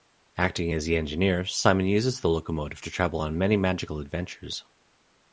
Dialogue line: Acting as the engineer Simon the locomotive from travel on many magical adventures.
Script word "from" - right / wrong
wrong